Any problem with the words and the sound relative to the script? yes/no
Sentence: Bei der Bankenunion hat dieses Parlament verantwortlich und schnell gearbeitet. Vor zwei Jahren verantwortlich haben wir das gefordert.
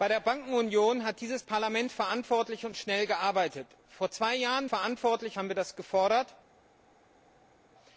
no